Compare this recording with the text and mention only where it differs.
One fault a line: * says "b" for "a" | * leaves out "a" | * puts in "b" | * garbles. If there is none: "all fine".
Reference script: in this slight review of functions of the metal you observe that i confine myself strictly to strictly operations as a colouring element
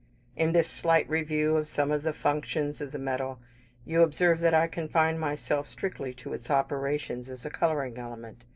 * puts in "some of the"
* says "its" for "strictly"